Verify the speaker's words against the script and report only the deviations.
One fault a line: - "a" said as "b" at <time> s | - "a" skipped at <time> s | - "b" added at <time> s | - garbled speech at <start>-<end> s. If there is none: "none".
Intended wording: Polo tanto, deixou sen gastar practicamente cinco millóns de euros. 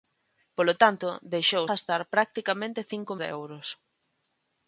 - "sen" skipped at 1.6 s
- "millóns" skipped at 3.1 s